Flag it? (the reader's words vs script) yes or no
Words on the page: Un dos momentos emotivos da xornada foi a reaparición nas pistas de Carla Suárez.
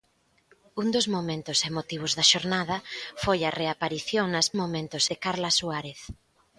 yes